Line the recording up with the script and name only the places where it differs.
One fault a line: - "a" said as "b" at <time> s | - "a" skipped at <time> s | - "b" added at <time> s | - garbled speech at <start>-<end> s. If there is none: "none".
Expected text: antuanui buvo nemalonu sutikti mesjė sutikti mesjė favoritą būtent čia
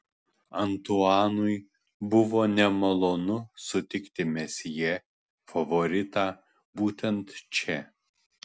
- "sutikti mesjė" skipped at 5.0 s